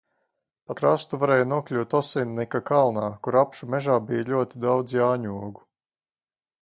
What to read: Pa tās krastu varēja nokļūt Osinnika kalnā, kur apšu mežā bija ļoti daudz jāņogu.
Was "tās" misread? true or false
true